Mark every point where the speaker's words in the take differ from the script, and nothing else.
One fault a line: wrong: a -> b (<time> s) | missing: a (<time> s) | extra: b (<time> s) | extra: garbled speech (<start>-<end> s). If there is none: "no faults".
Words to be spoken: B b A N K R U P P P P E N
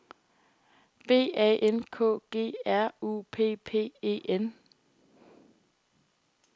missing: b (1.3 s)
extra: G (2.3 s)
missing: P P (3.9 s)